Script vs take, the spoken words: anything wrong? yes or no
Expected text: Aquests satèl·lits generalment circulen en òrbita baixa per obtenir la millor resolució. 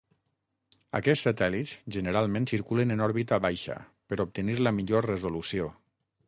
no